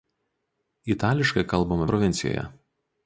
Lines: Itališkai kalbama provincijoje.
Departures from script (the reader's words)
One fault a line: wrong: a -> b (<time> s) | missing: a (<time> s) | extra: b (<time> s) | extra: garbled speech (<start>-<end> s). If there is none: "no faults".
no faults